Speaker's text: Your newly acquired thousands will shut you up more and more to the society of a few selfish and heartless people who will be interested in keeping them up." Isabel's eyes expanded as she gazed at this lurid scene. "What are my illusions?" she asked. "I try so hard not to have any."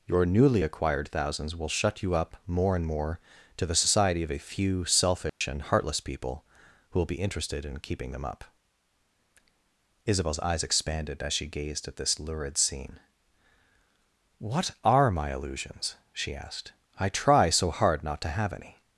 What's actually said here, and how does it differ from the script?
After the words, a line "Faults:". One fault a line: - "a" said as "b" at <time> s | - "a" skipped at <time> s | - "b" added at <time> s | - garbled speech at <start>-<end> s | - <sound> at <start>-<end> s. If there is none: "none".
Your newly acquired thousands will shut you up more and more to the society of a few selfish and heartless people who will be interested in keeping them up." Isabel's eyes expanded as she gazed at this lurid scene. "What are my illusions?" she asked. "I try so hard not to have any."
Faults:
- dropout at 5.3-5.4 s